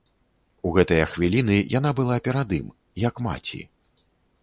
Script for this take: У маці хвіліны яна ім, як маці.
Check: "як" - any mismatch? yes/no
no